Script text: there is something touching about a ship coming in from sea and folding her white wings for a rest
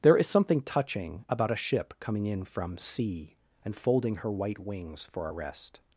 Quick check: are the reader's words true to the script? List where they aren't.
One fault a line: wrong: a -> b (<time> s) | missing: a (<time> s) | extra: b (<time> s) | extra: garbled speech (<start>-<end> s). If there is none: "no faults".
no faults